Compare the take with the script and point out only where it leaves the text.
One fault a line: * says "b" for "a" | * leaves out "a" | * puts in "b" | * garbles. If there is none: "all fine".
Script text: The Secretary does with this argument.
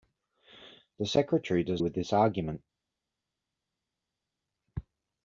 all fine